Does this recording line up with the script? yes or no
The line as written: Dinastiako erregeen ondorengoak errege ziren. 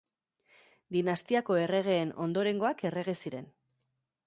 yes